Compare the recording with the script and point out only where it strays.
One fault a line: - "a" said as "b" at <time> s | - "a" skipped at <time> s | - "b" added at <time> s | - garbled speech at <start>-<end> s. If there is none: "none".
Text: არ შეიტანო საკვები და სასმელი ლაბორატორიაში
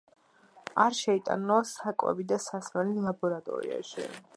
none